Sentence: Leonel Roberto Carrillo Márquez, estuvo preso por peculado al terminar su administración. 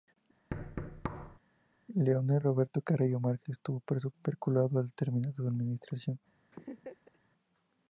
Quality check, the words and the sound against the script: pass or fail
fail